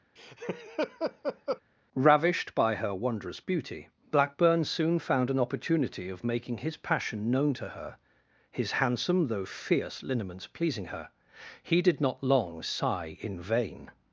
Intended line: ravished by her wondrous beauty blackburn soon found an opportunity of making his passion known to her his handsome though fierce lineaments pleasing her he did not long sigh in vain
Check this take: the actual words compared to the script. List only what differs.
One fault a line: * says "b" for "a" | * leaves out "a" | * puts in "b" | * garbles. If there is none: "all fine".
all fine